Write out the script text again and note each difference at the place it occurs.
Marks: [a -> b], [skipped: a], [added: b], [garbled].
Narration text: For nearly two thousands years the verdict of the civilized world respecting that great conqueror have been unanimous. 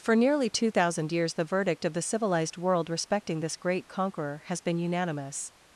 For nearly two [thousands -> thousand] years the verdict of the civilized world respecting [that -> this] great conqueror [have -> has] been unanimous.